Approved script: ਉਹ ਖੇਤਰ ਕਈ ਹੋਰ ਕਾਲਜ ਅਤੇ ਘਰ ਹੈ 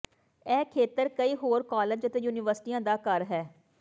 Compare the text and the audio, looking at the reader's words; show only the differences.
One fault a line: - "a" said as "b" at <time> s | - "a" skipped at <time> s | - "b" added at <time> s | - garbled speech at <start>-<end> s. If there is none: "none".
- "ਉਹ" said as "ਇਹ" at 0.5 s
- "ਯੂਨੀਵਰਸਿਟੀਆਂ ਦਾ" added at 2.2 s